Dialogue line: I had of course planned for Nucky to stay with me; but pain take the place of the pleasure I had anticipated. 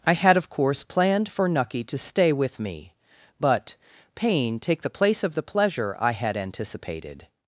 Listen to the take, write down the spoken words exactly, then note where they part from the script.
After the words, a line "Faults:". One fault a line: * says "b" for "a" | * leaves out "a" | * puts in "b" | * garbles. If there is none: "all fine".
I had of course planned for Nucky to stay with me; but pain take the place of the pleasure I had anticipated.
Faults:
all fine